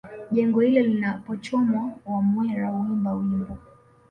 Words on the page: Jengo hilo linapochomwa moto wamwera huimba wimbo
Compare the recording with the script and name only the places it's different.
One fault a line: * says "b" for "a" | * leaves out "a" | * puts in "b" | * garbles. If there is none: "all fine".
* leaves out "moto"